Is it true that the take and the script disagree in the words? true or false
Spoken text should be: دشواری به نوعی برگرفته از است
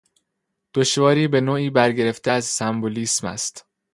true